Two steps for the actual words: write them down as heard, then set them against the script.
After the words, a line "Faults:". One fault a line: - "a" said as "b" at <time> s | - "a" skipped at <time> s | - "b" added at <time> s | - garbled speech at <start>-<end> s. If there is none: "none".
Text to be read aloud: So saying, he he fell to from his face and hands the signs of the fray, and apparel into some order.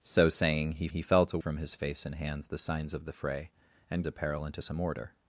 So saying, he he fell to from his face and hands the signs of the fray, and apparel into some order.
Faults:
none